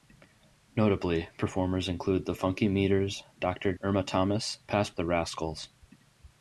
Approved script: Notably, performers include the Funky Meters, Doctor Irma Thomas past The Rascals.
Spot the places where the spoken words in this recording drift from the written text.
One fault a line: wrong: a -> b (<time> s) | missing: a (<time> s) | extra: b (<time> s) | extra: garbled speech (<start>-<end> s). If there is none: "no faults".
no faults